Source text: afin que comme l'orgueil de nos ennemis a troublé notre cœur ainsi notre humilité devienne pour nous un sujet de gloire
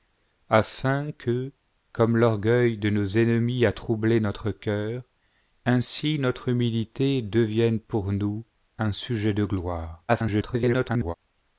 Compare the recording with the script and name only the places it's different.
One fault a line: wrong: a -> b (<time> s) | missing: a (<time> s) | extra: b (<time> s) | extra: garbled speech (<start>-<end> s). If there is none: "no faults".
extra: garbled speech (10.1-11.1 s)